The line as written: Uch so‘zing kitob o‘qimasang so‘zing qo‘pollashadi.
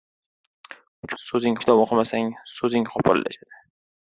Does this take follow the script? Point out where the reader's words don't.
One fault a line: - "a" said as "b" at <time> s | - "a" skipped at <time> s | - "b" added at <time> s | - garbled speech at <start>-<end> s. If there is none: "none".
none